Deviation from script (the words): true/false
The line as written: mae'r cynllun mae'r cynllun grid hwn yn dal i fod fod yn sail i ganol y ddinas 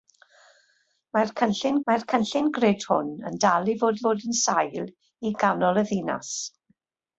false